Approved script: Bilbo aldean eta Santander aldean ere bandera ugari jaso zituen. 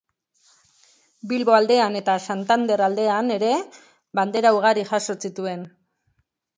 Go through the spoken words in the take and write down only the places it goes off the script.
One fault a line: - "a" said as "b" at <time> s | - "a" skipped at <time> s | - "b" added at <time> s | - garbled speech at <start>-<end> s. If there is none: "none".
none